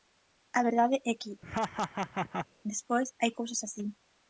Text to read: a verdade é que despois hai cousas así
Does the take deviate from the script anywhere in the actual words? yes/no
no